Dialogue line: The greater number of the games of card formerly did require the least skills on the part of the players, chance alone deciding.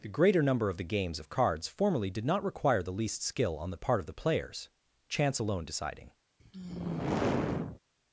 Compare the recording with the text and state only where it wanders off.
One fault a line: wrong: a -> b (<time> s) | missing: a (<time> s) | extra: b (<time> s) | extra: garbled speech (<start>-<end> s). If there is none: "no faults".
wrong: card -> cards (1.3 s)
extra: not (2.2 s)
wrong: skills -> skill (3.2 s)